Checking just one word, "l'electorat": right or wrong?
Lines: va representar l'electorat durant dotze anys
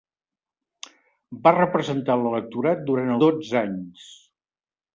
right